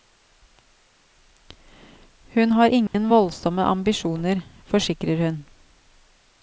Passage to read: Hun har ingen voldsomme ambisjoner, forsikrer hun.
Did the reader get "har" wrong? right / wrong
right